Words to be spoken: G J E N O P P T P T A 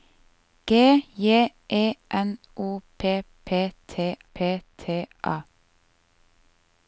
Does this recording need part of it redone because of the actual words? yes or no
no